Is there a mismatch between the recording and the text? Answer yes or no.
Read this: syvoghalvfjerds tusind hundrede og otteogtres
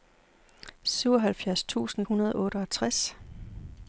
no